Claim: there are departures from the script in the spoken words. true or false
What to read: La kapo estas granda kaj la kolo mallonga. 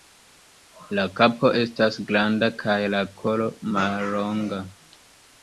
false